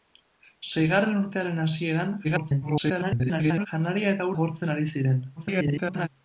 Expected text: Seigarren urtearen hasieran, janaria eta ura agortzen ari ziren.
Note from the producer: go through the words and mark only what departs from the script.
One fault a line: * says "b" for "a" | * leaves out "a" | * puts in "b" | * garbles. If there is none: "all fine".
* garbles
* leaves out "ura"
* garbles